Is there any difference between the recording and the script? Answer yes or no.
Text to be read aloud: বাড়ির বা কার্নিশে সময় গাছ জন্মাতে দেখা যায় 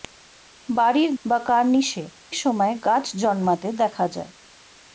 no